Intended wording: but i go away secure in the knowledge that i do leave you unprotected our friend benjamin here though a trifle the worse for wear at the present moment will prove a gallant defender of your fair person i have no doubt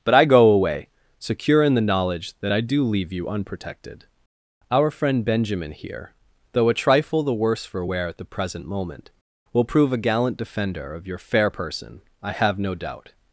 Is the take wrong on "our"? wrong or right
right